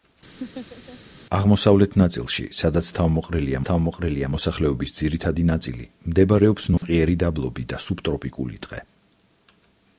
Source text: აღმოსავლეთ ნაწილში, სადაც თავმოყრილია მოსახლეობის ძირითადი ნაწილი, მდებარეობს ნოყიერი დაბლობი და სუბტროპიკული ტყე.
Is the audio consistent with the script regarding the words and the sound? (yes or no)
no